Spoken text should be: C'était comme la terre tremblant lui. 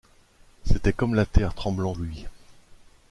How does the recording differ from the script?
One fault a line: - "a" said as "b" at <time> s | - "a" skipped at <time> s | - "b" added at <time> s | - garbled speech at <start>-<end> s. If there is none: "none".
none